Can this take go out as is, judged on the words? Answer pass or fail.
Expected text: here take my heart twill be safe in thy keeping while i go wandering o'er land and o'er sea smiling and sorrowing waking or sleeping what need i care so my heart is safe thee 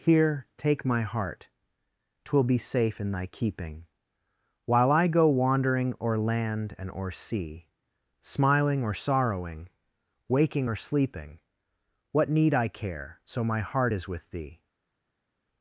fail